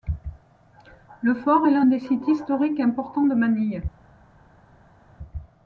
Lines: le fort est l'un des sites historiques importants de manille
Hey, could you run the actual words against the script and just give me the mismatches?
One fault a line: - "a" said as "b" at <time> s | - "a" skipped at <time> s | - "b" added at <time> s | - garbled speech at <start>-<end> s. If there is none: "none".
none